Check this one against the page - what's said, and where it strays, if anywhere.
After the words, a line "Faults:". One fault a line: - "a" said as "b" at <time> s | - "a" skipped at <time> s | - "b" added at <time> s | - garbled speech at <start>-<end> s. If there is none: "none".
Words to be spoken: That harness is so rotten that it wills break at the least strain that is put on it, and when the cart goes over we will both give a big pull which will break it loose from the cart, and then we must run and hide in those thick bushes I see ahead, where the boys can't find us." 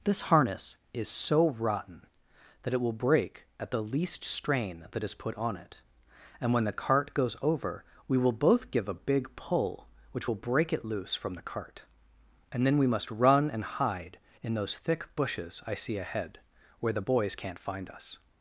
This harness is so rotten that it will break at the least strain that is put on it, and when the cart goes over we will both give a big pull which will break it loose from the cart, and then we must run and hide in those thick bushes I see ahead, where the boys can't find us."
Faults:
- "That" said as "This" at 0.0 s
- "wills" said as "will" at 2.8 s